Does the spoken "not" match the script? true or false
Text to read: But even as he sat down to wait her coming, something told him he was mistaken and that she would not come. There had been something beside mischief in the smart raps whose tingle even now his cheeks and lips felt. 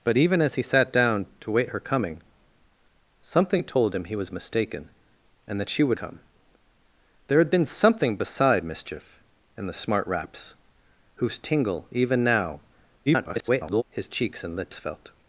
false